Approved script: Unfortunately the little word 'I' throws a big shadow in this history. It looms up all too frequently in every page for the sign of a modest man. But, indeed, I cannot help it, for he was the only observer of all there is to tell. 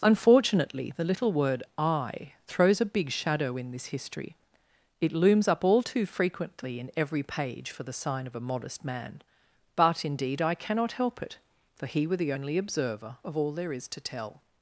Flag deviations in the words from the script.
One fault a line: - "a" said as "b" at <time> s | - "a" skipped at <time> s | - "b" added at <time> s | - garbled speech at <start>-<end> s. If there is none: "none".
- "was" said as "were" at 12.1 s